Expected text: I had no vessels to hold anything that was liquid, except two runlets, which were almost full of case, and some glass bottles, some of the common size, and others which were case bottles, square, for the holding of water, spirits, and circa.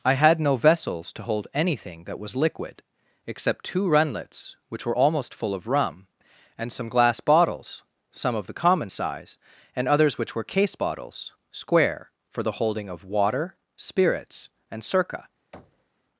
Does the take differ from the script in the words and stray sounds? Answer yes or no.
yes